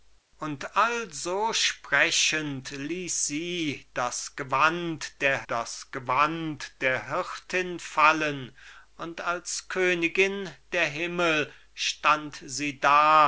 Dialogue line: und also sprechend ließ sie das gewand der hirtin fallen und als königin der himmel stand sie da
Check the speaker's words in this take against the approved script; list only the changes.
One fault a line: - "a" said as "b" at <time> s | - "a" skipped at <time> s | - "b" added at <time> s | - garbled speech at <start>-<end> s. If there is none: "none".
- "das gewand der" added at 5.5 s